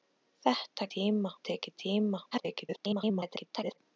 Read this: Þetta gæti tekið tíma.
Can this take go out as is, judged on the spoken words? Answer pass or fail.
fail